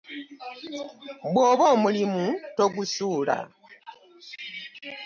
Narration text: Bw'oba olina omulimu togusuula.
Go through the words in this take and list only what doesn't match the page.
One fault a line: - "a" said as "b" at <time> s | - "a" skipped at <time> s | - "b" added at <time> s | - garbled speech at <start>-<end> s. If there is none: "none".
- "olina" skipped at 1.6 s